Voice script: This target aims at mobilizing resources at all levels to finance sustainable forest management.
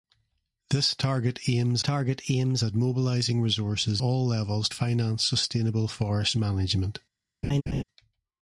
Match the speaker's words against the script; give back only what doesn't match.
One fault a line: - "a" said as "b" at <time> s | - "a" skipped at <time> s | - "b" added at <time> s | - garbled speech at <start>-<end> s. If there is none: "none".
- "target aims" added at 1.8 s
- "at" skipped at 4.0 s
- "to" skipped at 4.7 s